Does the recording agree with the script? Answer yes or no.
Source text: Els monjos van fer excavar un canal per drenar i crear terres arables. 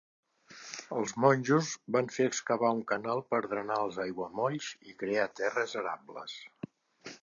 no